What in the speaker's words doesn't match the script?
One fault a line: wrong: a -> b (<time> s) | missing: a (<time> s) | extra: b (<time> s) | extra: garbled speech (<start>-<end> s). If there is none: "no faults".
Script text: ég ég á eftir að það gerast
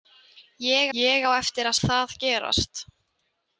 no faults